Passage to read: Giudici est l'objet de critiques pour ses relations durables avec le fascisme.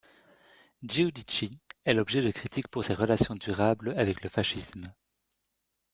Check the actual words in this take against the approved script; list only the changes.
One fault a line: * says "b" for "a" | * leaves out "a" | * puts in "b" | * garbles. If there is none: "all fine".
all fine